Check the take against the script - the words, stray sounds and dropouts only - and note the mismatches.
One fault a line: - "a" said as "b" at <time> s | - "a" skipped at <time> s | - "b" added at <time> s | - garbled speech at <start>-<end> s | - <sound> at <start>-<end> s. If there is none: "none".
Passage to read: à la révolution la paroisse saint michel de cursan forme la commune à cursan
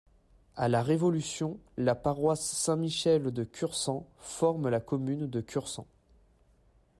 - "à" said as "de" at 5.3 s